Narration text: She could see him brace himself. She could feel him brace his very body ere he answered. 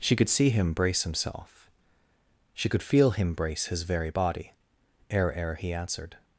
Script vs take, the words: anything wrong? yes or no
yes